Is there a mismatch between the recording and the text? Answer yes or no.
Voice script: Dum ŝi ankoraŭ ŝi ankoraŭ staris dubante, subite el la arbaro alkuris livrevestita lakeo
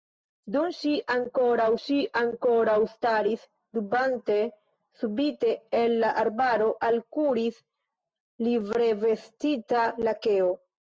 no